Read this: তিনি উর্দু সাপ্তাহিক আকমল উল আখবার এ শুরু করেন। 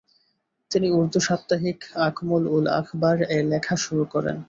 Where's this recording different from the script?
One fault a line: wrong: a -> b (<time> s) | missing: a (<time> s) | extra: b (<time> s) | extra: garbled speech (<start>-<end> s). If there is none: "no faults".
extra: লেখা (3.5 s)